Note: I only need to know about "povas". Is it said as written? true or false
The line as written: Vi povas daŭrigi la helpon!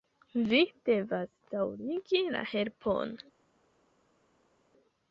false